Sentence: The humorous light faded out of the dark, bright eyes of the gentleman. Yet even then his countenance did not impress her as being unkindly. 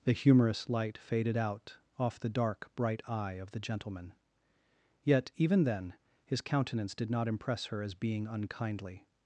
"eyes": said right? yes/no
no